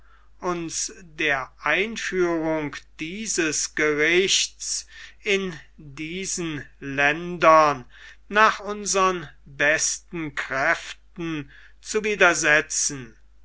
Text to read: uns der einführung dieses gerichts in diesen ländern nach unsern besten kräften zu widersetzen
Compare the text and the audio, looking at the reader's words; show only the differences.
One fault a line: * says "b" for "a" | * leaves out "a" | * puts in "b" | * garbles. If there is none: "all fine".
all fine